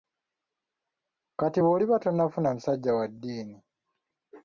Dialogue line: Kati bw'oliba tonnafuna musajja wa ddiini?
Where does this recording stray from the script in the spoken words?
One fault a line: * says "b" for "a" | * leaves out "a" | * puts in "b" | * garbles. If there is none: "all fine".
all fine